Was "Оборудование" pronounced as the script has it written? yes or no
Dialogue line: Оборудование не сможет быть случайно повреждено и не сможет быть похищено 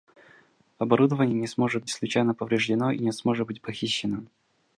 yes